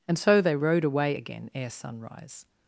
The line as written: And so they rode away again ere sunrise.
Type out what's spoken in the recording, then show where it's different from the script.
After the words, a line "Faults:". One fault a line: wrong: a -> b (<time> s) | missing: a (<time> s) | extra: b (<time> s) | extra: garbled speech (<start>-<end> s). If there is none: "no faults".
And so they rode away again ere sunrise.
Faults:
no faults